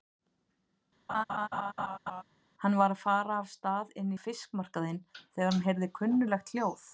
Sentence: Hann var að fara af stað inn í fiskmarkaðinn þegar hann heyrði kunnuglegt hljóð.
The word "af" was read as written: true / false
true